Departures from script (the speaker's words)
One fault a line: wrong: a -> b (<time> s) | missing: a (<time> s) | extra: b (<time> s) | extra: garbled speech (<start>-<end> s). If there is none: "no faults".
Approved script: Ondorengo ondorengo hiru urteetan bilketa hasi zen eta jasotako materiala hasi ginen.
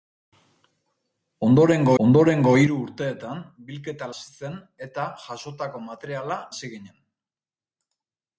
no faults